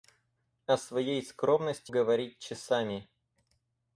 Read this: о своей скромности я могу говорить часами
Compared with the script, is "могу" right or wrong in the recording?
wrong